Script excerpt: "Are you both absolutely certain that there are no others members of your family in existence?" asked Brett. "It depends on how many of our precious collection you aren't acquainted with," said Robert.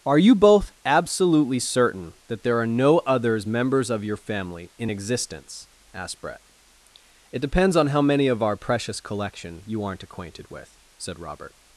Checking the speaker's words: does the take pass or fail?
pass